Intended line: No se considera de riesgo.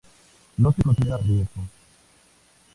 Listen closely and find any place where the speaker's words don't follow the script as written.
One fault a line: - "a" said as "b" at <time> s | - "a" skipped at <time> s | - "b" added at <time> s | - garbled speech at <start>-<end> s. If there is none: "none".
none